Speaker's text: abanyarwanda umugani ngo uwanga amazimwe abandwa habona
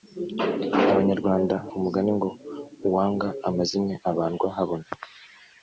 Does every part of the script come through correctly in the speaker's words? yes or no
yes